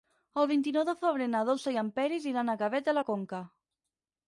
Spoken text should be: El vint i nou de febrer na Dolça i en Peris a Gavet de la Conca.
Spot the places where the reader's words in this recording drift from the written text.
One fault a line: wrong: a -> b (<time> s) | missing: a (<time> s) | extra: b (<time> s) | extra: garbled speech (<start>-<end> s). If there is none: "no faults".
extra: iran (2.3 s)